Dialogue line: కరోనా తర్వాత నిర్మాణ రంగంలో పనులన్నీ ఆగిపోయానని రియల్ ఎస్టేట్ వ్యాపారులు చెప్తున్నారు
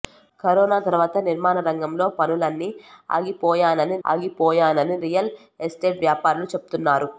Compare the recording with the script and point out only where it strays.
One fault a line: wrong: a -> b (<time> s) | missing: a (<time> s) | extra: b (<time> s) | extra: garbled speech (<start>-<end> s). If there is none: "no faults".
extra: ఆగిపోయానని (4.0 s)